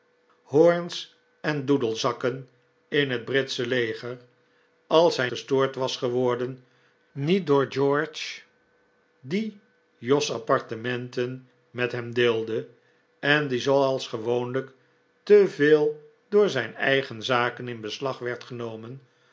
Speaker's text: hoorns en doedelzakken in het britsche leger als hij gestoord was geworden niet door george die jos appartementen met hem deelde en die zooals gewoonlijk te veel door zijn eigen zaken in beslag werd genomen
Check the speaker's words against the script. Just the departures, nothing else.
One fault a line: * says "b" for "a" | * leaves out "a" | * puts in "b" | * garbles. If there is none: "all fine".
all fine